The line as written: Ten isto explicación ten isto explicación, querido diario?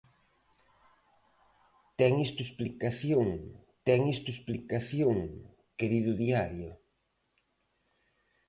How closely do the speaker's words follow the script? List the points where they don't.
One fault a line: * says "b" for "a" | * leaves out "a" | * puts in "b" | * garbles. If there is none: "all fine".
all fine